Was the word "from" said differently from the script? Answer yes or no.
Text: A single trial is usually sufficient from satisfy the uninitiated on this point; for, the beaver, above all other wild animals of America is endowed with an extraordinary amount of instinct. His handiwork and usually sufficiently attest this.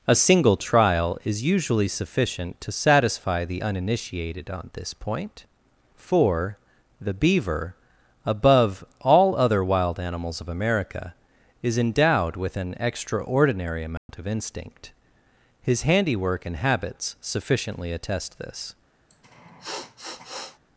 yes